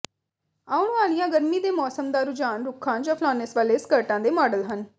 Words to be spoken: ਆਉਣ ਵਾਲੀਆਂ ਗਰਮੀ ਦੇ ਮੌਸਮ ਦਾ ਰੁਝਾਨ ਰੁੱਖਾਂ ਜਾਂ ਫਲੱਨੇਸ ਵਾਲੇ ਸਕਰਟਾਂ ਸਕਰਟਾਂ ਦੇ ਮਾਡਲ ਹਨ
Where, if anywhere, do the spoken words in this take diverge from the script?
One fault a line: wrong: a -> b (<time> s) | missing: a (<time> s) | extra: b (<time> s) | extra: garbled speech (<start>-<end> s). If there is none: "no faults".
missing: ਸਕਰਟਾਂ (4.2 s)